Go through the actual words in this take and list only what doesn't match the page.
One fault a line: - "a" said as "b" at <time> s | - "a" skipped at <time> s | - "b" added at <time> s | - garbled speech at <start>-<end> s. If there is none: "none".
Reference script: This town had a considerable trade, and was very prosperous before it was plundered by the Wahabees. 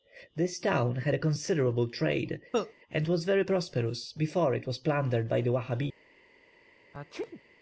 none